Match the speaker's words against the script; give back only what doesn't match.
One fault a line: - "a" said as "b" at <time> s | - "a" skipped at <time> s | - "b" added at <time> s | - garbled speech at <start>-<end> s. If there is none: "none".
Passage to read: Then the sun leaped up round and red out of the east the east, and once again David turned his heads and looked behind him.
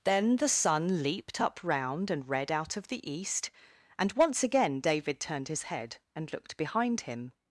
- "the east" skipped at 3.5 s
- "heads" said as "head" at 5.6 s